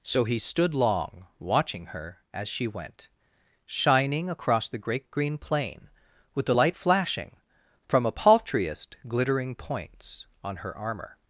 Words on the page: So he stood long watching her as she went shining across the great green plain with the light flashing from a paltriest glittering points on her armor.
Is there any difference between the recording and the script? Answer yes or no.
no